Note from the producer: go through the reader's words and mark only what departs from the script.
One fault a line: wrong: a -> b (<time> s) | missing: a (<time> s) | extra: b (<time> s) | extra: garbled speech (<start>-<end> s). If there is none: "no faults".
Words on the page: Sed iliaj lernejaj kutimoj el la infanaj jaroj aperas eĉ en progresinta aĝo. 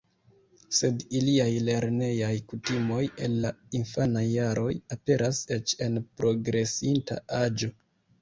no faults